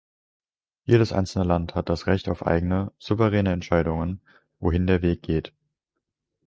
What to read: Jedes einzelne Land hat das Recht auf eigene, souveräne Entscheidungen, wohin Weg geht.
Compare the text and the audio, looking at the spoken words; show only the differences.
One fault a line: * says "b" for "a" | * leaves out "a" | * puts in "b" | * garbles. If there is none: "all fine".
* puts in "der"